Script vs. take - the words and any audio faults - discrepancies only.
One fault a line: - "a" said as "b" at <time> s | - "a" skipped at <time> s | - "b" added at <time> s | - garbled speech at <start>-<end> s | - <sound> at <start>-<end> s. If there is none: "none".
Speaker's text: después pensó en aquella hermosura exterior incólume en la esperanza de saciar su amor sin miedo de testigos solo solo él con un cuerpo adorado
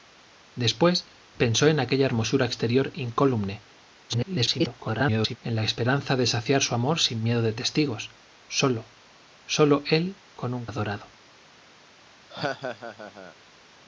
- garbled speech at 4.1-5.4 s
- "cuerpo" skipped at 10.7 s
- laugh at 12.3-13.4 s